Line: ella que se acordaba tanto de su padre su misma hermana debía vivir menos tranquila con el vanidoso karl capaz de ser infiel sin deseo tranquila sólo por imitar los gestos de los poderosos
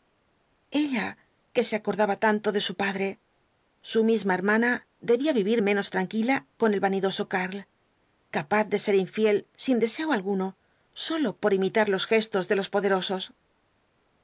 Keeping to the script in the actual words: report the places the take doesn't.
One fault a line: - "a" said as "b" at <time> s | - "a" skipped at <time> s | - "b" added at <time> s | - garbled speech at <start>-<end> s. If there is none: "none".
- "tranquila" said as "alguno" at 10.1 s